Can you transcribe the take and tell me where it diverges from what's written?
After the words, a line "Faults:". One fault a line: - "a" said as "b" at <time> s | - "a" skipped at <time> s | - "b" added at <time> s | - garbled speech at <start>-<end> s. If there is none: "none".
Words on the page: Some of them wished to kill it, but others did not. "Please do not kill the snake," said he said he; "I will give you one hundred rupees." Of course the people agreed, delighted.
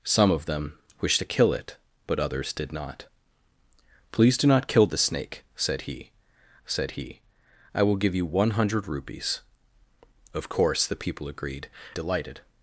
Some of them wished to kill it, but others did not. "Please do not kill the snake," said he said he; "I will give you one hundred rupees." Of course the people agreed, delighted.
Faults:
none